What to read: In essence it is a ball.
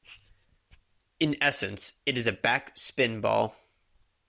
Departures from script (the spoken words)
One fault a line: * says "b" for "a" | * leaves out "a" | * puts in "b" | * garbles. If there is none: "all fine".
* puts in "back spin"